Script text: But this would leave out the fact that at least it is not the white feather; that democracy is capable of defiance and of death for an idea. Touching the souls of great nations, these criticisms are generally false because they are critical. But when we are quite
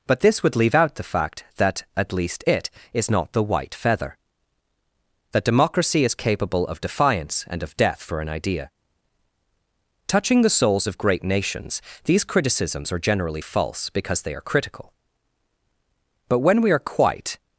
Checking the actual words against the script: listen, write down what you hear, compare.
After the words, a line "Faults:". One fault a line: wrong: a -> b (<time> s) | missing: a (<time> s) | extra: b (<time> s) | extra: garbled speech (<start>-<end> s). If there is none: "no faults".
But this would leave out the fact that at least it is not the white feather; that democracy is capable of defiance and of death for an idea. Touching the souls of great nations, these criticisms are generally false because they are critical. But when we are quite
Faults:
no faults